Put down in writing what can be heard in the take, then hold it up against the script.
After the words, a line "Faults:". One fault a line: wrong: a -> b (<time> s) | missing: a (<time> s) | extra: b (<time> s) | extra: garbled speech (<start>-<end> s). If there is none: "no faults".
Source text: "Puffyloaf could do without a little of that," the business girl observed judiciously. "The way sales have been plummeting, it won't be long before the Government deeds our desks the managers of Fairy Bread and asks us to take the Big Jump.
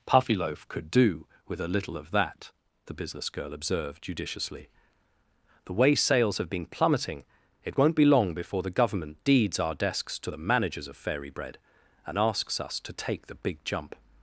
"Puffyloaf could do with a little of that," the business girl observed judiciously. "The way sales have been plummeting, it won't be long before the Government deeds our desks to the managers of Fairy Bread and asks us to take the Big Jump.
Faults:
wrong: without -> with (1.5 s)
extra: to (10.2 s)